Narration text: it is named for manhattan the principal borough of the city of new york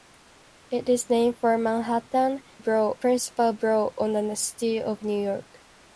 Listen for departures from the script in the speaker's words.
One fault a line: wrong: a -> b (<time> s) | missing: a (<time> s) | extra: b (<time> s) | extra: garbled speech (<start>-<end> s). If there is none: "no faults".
wrong: the -> borough (2.6 s)